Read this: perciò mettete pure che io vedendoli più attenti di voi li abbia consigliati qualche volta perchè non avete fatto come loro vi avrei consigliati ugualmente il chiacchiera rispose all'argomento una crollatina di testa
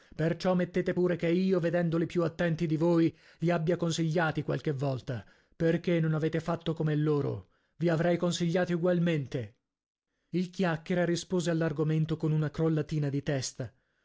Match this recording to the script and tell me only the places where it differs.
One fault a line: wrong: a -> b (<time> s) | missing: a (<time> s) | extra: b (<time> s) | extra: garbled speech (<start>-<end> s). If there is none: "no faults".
extra: con (12.2 s)